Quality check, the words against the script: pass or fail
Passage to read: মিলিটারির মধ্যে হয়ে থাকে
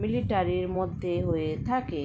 pass